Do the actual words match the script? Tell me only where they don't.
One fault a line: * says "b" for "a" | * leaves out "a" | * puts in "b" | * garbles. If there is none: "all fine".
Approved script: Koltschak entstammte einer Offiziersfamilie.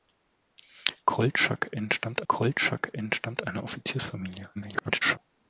* puts in "koltschak entstammte"
* garbles